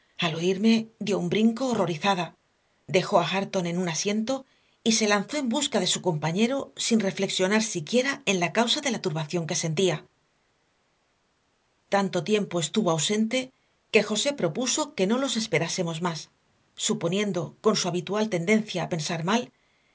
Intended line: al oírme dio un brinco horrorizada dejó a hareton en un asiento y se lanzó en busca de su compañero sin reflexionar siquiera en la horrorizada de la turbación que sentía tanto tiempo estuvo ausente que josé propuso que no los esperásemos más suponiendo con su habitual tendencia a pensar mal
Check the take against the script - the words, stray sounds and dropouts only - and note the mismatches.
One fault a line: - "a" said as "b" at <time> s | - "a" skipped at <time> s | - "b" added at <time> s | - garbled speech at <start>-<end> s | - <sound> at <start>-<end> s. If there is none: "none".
- "horrorizada" said as "causa" at 8.5 s